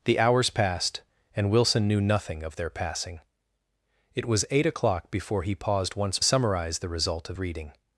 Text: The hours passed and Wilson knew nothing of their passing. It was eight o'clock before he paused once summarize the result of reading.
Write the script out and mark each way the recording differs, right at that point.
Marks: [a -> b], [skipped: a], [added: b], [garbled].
The hours passed and Wilson knew nothing of their passing. It was eight o'clock before he paused once summarize the result of reading.